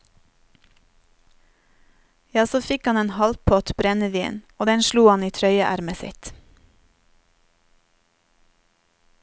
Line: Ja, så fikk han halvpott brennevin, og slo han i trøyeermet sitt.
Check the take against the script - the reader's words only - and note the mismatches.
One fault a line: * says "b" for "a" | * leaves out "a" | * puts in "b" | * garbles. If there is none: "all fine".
* puts in "en"
* puts in "den"